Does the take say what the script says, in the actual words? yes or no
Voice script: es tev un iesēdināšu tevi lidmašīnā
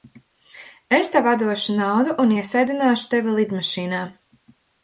no